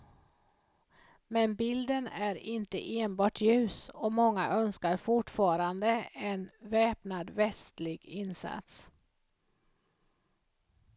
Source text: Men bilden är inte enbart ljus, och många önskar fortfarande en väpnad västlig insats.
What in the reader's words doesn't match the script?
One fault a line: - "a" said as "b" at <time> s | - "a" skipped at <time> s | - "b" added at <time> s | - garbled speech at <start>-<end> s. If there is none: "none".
none